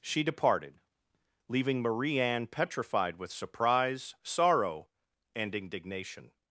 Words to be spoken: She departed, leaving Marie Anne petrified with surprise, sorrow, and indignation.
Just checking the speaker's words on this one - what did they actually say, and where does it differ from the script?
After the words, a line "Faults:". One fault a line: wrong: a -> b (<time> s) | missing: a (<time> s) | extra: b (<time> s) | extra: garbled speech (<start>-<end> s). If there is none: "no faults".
She departed, leaving Marie Anne petrified with surprise, sorrow, and indignation.
Faults:
no faults